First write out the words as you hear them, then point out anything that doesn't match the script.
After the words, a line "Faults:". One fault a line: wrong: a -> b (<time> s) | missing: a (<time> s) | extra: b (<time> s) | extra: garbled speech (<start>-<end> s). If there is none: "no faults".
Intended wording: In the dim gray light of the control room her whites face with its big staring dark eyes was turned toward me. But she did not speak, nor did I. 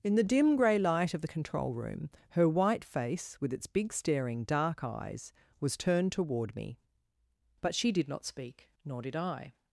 In the dim gray light of the control room her white face with its big staring dark eyes was turned toward me. But she did not speak, nor did I.
Faults:
wrong: whites -> white (2.5 s)